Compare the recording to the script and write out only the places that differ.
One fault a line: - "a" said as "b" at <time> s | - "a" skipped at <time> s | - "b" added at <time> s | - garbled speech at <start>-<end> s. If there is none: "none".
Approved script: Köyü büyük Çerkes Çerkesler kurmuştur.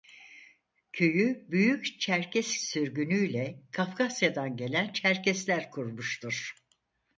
- "sürgünüyle Kafkasyadan gelen" added at 2.5 s